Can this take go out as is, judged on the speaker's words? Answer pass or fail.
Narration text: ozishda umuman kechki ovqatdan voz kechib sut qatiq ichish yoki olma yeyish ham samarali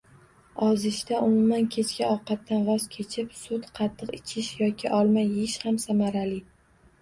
pass